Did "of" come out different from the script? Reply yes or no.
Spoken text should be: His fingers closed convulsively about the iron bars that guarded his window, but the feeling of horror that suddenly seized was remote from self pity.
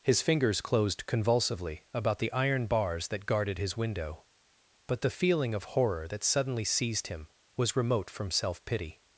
no